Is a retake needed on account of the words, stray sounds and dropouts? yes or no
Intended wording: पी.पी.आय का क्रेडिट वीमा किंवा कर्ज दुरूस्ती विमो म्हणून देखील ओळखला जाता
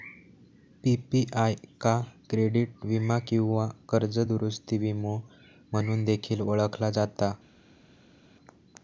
no